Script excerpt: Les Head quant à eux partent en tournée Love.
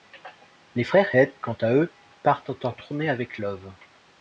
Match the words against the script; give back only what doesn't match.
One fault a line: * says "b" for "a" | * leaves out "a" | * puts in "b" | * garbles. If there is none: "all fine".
* puts in "frères"
* puts in "avec"